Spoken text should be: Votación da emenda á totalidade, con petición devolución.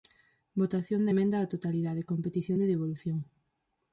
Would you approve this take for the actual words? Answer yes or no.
no